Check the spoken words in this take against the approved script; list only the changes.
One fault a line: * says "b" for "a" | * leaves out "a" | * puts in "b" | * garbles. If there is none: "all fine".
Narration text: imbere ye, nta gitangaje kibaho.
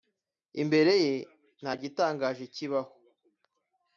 all fine